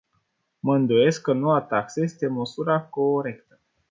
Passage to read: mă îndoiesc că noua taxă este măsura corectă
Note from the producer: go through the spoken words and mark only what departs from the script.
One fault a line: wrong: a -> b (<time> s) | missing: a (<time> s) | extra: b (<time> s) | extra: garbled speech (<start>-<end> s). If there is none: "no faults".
no faults